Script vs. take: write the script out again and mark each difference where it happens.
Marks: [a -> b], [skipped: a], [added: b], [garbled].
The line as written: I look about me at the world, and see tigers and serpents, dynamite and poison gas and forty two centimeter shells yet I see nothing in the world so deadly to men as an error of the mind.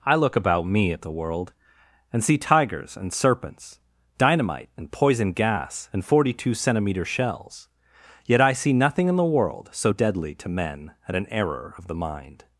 I look about me at the world, and see tigers and serpents, dynamite and poison gas and forty two centimeter shells yet I see nothing in the world so deadly to men [as -> at] an error of the mind.